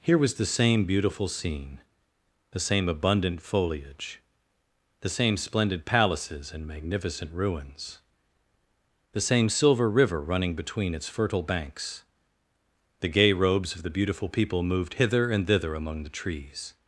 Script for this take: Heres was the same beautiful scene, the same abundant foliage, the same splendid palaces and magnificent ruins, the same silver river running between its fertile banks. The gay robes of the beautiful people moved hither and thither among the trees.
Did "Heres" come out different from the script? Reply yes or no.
yes